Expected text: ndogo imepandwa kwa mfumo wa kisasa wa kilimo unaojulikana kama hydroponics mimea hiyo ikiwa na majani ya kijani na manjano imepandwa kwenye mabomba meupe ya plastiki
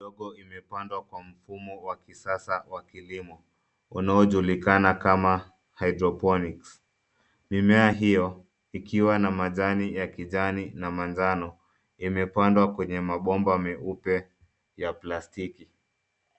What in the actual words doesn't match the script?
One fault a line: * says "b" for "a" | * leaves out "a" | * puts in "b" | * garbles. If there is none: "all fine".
all fine